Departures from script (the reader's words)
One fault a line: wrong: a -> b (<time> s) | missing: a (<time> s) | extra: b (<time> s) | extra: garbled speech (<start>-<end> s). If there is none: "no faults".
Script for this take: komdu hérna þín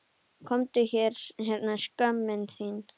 extra: skömmin (1.9 s)